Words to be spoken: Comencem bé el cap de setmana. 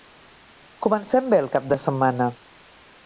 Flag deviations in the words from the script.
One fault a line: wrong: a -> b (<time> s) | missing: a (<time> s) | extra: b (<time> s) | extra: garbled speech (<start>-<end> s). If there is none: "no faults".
no faults